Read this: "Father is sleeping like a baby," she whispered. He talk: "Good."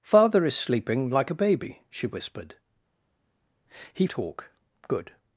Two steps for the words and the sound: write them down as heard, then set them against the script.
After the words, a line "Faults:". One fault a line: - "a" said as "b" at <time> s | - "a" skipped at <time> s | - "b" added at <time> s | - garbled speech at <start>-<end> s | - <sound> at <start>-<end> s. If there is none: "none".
"Father is sleeping like a baby," she whispered. He talk: "Good."
Faults:
none